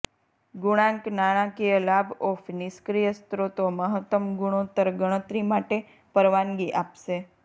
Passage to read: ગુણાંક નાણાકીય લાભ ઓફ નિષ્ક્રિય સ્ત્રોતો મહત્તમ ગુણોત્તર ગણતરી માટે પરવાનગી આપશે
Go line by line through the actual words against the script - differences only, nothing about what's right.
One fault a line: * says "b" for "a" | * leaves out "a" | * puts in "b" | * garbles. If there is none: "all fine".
all fine